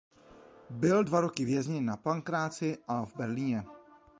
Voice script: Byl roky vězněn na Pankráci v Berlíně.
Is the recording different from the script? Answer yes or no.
yes